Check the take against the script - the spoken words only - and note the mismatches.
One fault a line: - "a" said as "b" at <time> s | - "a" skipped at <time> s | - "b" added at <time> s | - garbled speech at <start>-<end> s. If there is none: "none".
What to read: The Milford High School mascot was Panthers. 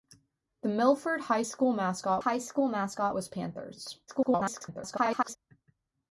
- "High School mascot" added at 2.2 s
- garbled speech at 4.1-5.4 s